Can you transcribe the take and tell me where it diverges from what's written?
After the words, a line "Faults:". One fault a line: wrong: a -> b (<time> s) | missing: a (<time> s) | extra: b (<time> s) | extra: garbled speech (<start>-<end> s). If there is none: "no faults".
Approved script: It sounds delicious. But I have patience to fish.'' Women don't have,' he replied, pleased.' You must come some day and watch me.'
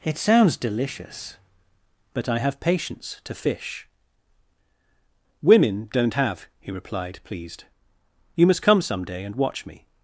It sounds delicious. But I have patience to fish.'' Women don't have,' he replied, pleased.' You must come some day and watch me.'
Faults:
no faults